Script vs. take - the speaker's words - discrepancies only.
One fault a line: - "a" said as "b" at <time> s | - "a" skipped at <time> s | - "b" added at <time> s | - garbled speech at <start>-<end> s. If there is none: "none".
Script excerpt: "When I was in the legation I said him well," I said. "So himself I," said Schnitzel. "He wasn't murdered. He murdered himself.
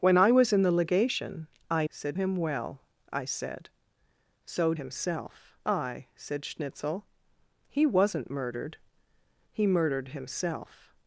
none